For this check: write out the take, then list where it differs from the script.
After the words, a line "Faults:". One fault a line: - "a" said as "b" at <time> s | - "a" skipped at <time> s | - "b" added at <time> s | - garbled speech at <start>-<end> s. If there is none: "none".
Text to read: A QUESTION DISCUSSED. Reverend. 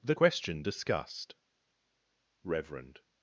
THE QUESTION DISCUSSED. Reverend.
Faults:
- "A" said as "THE" at 0.0 s